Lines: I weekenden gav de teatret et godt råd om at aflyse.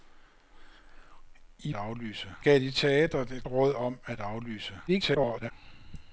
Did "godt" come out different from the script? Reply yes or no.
yes